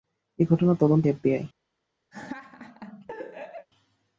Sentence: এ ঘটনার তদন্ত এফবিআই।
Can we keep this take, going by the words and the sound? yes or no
no